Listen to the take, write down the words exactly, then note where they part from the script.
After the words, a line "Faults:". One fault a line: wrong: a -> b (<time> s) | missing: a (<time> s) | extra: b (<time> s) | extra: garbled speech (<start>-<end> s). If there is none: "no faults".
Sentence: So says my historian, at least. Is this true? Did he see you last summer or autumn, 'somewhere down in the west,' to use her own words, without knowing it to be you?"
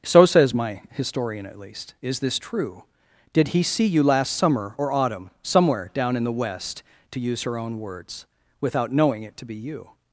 So says my historian, at least. Is this true? Did he see you last summer or autumn, 'somewhere down in the west,' to use her own words, without knowing it to be you?"
Faults:
no faults